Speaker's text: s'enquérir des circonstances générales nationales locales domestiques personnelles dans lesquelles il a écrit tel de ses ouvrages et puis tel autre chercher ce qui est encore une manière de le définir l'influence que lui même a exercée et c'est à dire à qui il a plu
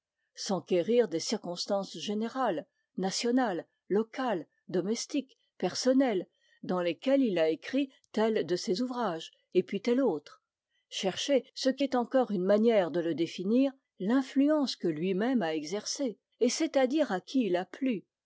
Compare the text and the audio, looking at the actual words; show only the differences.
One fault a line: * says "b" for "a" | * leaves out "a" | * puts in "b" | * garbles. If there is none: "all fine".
all fine